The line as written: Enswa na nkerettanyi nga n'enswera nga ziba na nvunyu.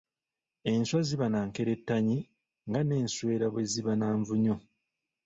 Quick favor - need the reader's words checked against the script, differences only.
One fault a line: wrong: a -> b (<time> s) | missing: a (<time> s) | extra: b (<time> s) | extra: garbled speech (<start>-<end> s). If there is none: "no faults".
extra: ziba (1.1 s)
wrong: nga -> bwe (3.5 s)